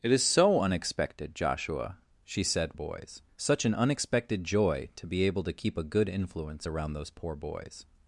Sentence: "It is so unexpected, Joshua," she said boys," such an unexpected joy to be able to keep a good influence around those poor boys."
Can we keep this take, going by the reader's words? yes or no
yes